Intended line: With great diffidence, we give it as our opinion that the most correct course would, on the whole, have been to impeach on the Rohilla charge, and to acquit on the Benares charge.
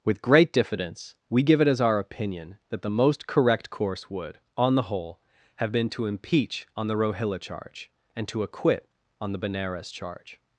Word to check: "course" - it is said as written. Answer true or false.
true